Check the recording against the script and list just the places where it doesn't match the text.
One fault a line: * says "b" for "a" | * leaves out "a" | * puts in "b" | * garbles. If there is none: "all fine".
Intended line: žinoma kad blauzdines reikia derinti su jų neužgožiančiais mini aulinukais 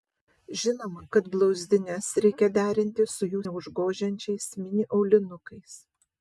all fine